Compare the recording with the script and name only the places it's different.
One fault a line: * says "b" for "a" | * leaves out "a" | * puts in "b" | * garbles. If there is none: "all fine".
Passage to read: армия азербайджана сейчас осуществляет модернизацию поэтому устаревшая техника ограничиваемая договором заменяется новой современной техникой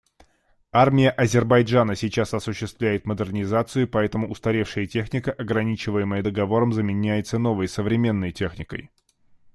all fine